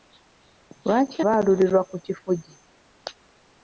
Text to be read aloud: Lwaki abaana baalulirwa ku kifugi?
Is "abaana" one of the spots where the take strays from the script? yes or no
yes